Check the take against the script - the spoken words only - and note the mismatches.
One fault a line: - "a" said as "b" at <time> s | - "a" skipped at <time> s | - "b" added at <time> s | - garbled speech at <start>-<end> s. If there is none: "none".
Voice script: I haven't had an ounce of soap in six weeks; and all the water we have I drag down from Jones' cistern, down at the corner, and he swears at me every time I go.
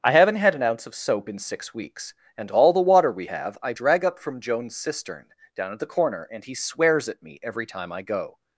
- "down" said as "up" at 4.0 s